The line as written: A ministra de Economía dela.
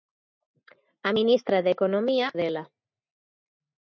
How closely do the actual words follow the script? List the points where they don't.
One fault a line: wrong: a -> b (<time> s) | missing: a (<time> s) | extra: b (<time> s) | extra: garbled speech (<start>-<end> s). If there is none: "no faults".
no faults